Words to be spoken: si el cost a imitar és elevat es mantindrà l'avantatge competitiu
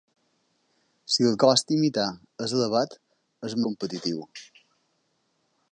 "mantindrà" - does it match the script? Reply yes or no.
no